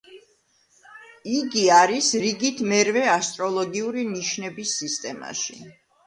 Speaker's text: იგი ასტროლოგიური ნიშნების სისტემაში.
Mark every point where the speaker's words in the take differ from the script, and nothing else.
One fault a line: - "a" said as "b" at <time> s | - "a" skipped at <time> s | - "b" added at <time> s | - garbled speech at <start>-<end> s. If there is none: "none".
- "არის რიგით მერვე" added at 1.8 s